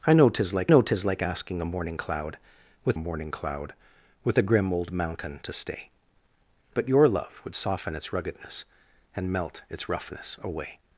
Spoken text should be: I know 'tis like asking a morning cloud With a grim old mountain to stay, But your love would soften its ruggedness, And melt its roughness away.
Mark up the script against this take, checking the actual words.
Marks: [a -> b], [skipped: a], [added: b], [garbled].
I know 'tis like [added: know tis like] asking a morning cloud With [added: morning cloud With] a grim old mountain to stay, But your love would soften its ruggedness, And melt its roughness away.